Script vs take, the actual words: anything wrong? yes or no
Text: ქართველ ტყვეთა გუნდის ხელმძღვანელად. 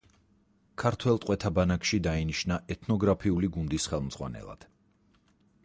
yes